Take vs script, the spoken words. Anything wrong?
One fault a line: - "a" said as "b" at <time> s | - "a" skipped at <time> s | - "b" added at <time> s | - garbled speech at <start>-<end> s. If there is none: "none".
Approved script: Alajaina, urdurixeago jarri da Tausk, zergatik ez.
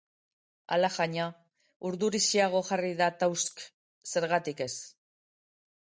none